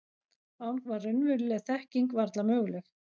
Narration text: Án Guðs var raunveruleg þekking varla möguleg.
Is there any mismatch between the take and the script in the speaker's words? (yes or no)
yes